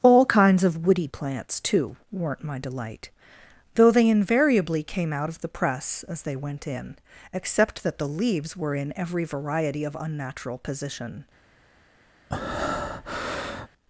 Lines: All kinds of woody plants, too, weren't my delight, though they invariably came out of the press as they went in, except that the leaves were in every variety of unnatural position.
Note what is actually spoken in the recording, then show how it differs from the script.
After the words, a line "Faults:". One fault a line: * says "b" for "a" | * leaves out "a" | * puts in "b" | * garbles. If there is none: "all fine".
All kinds of woody plants, too, weren't my delight, though they invariably came out of the press as they went in, except that the leaves were in every variety of unnatural position.
Faults:
all fine